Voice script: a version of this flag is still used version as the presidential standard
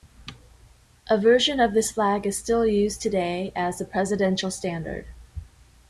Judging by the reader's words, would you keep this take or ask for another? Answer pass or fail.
fail